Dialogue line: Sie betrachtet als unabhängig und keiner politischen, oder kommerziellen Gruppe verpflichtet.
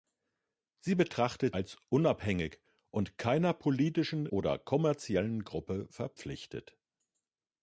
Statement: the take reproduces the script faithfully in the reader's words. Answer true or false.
true